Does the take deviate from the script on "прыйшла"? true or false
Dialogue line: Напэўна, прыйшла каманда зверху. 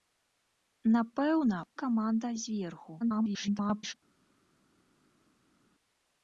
true